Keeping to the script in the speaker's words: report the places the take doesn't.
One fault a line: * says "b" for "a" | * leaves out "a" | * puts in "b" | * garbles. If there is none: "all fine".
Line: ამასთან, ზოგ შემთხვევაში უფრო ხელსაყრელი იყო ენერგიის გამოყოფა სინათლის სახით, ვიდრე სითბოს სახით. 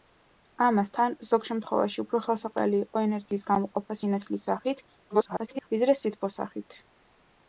* garbles